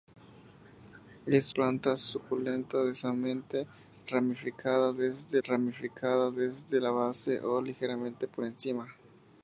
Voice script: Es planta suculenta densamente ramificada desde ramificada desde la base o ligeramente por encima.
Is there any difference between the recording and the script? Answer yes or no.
no